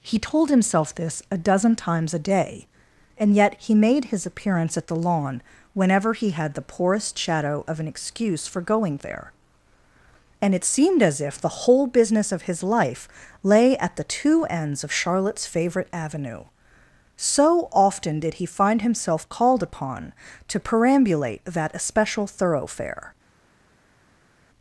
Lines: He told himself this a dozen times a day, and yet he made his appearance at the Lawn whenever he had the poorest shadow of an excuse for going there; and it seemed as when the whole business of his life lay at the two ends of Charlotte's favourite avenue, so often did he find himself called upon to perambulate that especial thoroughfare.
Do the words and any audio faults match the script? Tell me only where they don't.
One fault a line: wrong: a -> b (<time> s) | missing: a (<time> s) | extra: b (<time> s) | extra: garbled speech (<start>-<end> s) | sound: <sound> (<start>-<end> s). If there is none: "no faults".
wrong: when -> if (11.2 s)